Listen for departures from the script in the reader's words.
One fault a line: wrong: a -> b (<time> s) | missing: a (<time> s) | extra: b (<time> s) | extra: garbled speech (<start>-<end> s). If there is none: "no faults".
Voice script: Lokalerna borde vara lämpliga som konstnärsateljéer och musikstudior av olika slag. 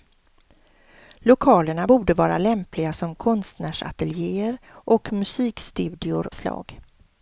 missing: av olika (6.3 s)